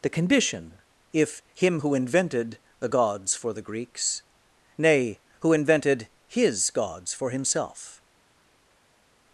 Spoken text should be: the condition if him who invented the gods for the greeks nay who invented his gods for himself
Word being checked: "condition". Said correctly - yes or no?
yes